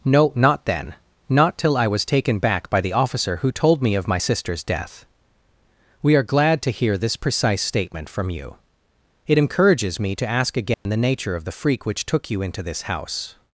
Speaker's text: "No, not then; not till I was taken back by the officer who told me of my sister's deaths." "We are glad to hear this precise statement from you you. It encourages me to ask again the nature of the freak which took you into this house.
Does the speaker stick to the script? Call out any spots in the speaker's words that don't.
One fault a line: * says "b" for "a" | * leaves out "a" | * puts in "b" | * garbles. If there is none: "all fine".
* says "death" for "deaths"
* leaves out "you"